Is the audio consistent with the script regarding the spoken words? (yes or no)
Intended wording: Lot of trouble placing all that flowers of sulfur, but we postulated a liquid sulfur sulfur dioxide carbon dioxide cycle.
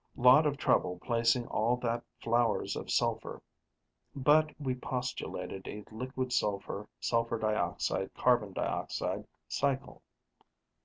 yes